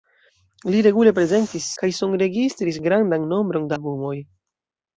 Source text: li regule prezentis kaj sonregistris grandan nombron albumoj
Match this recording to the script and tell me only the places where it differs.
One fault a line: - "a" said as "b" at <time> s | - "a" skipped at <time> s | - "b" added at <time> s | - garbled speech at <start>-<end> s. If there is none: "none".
none